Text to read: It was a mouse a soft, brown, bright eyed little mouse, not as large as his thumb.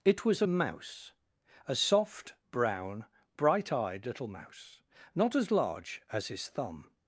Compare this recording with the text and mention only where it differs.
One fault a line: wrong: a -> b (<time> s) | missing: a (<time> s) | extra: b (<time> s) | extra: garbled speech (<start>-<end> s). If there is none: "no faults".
no faults